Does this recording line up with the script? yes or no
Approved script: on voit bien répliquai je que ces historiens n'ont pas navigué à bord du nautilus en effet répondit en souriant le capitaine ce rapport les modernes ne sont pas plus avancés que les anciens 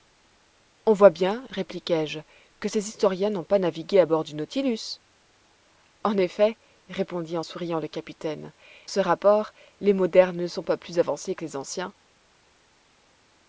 yes